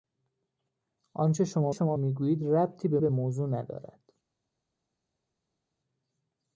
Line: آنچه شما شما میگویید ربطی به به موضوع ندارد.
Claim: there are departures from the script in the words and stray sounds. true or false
false